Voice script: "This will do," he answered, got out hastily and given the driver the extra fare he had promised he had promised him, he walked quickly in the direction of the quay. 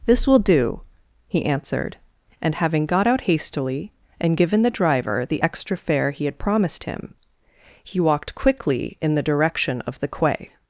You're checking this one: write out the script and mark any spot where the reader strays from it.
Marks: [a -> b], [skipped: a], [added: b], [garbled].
"This will do," he answered, [added: and having] got out hastily and given the driver the extra fare he had promised [skipped: he had promised] him, he walked quickly in the direction of the quay.